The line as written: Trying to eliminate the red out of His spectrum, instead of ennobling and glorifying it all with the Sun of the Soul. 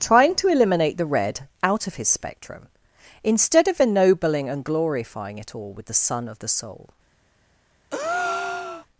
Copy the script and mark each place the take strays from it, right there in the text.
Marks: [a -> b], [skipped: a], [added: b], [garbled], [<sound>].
Trying to eliminate the red out of His spectrum, instead of ennobling and glorifying it all with the Sun of the Soul. [breath]